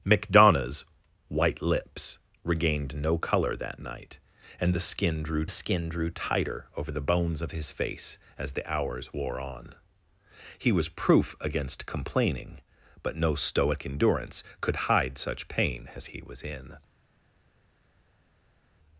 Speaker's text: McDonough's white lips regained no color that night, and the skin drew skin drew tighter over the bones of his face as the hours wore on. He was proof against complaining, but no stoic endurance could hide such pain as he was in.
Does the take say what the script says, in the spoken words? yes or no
yes